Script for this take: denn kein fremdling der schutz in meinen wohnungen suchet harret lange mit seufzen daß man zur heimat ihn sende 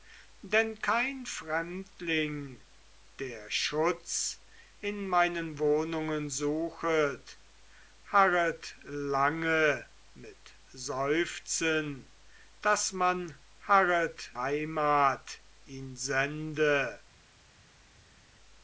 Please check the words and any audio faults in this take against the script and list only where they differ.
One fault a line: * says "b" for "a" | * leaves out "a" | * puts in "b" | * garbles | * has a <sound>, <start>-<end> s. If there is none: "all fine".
* says "harret" for "zur"